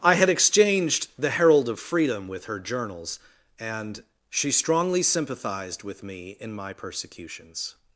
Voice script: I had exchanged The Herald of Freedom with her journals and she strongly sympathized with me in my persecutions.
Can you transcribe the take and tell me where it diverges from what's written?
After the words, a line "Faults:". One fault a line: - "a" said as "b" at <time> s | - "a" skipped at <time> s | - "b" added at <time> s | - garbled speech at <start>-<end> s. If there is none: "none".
I had exchanged The Herald of Freedom with her journals and she strongly sympathized with me in my persecutions.
Faults:
none